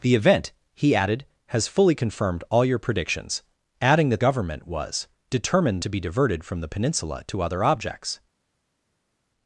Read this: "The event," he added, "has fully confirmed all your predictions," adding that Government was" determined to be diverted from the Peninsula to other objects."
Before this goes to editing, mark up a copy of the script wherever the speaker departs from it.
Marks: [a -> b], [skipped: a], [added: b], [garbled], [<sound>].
"The event," he added, "has fully confirmed all your predictions," adding that Government was" determined to be diverted from the Peninsula to other objects."